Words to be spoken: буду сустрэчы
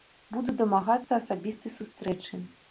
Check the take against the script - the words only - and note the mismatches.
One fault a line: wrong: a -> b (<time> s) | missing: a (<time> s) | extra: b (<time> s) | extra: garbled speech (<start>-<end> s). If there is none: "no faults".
extra: дамагацца асабістай (0.6 s)